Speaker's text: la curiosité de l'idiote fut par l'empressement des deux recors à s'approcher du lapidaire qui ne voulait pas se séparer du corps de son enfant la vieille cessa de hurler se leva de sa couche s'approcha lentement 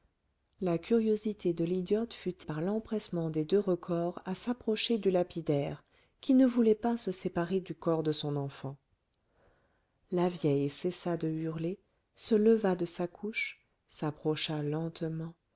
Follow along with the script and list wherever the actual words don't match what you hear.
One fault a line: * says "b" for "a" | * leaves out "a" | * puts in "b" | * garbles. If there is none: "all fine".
all fine